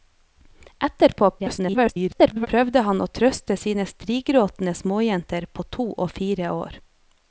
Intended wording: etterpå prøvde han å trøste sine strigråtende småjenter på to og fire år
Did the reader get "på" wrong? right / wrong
right